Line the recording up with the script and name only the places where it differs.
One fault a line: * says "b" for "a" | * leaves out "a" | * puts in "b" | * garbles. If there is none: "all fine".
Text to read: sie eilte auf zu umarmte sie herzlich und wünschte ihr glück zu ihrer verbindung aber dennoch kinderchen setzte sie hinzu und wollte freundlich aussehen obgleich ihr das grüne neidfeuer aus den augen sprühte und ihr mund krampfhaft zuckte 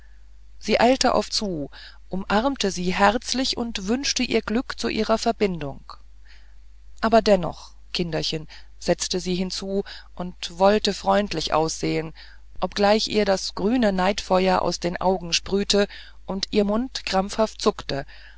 all fine